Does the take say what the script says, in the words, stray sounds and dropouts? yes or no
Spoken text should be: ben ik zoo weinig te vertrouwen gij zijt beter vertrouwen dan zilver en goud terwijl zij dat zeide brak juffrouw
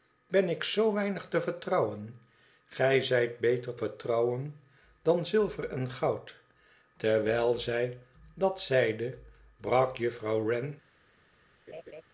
no